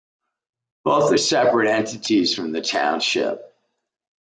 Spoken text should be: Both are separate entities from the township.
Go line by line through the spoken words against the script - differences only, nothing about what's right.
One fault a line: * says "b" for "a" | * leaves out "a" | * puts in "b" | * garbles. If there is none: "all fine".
all fine